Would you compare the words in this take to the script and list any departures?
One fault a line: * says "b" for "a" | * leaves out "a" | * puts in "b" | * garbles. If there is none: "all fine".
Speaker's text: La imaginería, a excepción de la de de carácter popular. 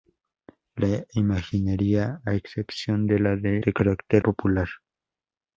all fine